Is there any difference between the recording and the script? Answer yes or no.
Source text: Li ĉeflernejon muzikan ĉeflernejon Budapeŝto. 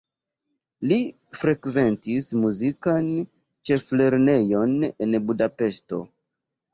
yes